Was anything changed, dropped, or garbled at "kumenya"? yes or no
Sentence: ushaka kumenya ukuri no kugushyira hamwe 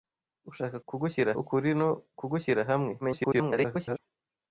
yes